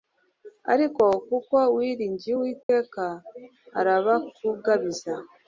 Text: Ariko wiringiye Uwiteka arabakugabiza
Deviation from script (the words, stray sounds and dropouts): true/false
true